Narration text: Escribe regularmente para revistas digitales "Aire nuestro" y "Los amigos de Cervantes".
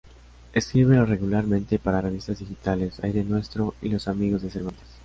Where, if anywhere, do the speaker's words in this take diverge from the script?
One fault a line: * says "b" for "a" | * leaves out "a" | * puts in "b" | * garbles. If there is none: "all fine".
all fine